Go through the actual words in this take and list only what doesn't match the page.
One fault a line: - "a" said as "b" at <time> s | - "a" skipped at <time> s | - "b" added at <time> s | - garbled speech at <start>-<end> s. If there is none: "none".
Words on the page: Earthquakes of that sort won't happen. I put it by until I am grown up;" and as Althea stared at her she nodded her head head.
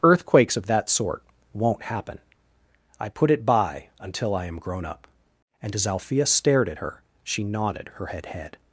none